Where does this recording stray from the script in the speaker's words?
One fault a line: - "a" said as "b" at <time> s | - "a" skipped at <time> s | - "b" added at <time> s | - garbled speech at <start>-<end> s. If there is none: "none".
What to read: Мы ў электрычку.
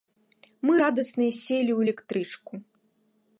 - "радасныя селі" added at 0.8 s